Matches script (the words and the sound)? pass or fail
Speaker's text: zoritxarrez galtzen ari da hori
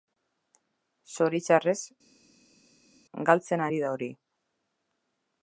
pass